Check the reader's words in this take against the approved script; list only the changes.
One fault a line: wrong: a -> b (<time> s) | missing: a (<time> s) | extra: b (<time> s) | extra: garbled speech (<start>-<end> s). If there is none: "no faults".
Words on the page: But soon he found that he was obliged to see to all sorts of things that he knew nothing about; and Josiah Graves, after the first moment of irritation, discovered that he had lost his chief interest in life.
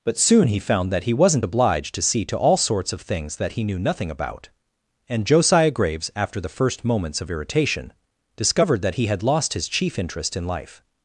wrong: was -> wasn't (1.1 s)
wrong: moment -> moments (6.9 s)